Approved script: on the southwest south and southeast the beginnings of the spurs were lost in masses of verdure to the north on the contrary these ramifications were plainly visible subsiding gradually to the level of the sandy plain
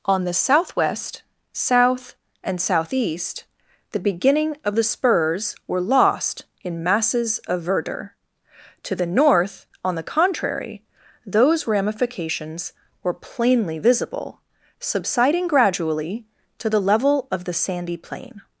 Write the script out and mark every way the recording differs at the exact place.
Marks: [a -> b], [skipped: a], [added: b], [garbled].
on the southwest south and southeast the [beginnings -> beginning] of the spurs were lost in masses of verdure to the north on the contrary [these -> those] ramifications were plainly visible subsiding gradually to the level of the sandy plain